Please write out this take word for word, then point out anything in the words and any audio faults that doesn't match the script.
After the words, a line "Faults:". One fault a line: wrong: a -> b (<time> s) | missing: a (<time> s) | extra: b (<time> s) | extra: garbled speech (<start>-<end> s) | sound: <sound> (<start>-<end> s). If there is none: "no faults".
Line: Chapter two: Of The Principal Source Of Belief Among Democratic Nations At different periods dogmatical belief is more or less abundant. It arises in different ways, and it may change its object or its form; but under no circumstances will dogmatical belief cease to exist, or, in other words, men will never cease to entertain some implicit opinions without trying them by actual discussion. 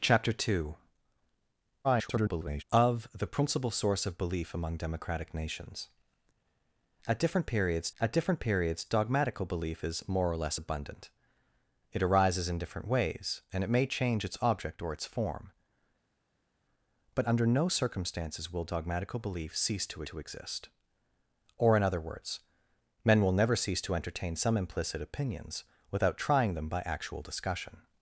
Chapter two: [garbled] Of The Principal Source Of Belief Among Democratic Nations At different periods At different periods dogmatical belief is more or less abundant. It arises in different ways, and it may change its object or its form; but under no circumstances will dogmatical belief cease to to exist, or, in other words, men will never cease to entertain some implicit opinions without trying them by actual discussion.
Faults:
extra: garbled speech (1.8-2.6 s)
extra: At different periods (8.0 s)
extra: to (20.0 s)